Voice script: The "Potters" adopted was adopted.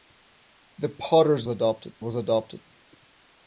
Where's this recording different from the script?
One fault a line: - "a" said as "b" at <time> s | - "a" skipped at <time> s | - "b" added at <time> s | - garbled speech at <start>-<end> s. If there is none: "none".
none